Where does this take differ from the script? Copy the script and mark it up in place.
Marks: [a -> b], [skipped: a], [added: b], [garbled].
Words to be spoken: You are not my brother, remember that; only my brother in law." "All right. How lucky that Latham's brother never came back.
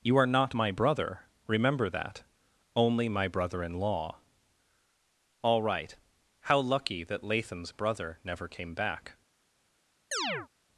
You are not my brother, remember that; only my brother in law." "All right. How lucky that Latham's brother never came back.